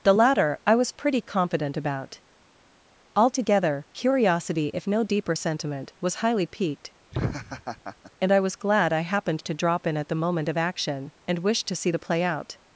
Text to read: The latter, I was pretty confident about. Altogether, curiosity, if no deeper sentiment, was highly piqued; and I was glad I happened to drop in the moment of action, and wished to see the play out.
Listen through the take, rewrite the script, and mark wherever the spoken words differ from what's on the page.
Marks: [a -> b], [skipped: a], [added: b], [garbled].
The latter, I was pretty confident about. Altogether, curiosity, if no deeper sentiment, was highly piqued; and I was glad I happened to drop in [added: at] the moment of action, and wished to see the play out.